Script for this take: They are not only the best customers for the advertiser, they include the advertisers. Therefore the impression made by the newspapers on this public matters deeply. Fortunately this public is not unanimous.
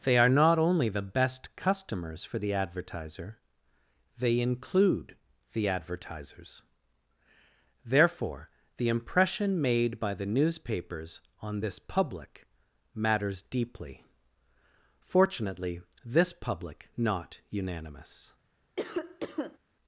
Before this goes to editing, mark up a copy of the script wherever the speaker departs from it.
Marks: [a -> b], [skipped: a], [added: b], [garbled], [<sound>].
They are not only the best customers for the advertiser, they include the advertisers. Therefore the impression made by the newspapers on this public matters deeply. Fortunately this public [skipped: is] not unanimous. [cough]